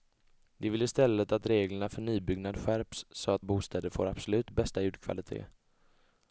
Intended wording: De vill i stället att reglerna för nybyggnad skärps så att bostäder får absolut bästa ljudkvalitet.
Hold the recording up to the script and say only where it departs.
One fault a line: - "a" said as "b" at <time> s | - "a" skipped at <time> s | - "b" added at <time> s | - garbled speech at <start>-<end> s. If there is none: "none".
none